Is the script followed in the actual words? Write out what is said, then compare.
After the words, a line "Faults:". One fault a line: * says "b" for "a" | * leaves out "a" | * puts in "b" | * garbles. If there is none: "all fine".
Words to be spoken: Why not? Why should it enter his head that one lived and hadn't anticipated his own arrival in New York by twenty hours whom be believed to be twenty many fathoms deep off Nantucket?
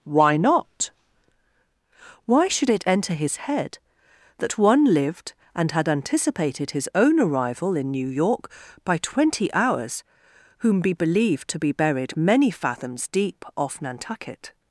Why not? Why should it enter his head that one lived and had anticipated his own arrival in New York by twenty hours whom be believed to be buried many fathoms deep off Nantucket?
Faults:
* says "had" for "hadn't"
* says "buried" for "twenty"